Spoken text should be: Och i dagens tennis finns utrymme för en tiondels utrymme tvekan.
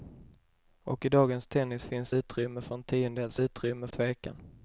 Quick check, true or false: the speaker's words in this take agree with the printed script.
true